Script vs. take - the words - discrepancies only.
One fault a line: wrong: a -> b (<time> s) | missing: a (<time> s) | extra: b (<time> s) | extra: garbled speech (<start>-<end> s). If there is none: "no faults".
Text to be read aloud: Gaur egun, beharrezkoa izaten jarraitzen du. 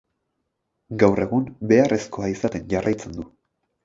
no faults